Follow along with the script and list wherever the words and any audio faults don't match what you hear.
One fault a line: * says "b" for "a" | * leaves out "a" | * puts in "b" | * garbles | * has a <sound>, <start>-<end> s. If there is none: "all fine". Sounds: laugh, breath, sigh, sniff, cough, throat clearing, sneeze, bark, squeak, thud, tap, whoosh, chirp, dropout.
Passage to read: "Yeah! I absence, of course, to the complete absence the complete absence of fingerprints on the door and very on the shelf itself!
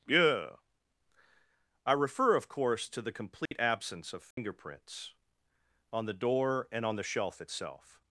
* says "refer" for "absence"
* has a dropout, 3.5-3.5 s
* leaves out "the complete absence"
* has a dropout, 4.3-4.4 s
* leaves out "very"